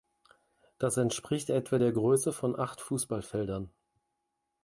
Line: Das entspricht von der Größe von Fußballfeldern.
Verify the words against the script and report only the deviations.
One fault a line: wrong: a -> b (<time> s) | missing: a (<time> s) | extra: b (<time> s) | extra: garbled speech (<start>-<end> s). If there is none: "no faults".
wrong: von -> etwa (1.5 s)
extra: acht (2.6 s)